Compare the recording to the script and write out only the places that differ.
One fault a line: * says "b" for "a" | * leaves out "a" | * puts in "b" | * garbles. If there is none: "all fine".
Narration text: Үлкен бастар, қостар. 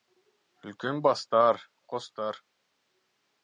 all fine